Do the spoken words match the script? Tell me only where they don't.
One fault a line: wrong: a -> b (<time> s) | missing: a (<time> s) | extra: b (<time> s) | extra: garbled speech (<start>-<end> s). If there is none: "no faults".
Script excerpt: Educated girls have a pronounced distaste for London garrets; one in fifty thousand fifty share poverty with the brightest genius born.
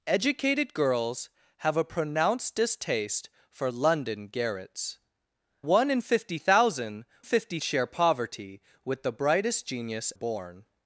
no faults